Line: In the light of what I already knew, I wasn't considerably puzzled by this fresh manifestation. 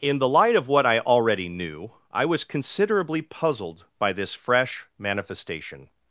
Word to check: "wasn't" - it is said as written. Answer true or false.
false